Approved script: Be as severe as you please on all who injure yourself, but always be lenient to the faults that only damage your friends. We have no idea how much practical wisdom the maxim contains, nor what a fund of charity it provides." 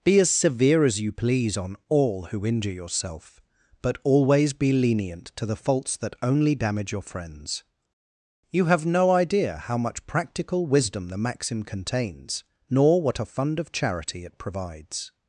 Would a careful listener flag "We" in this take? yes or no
yes